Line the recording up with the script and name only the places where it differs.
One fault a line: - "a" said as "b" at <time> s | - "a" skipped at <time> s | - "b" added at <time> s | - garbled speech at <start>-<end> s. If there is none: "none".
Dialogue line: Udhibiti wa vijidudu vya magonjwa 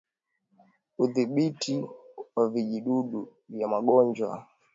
none